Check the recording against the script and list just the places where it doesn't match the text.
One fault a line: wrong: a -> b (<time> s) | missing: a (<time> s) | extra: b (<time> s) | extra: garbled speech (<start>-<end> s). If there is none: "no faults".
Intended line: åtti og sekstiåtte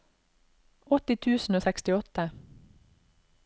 extra: tusen (1.2 s)